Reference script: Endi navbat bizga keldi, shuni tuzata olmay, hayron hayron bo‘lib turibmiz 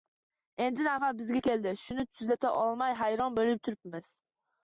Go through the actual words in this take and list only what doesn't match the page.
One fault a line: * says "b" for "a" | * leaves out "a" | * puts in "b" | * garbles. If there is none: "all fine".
* leaves out "hayron"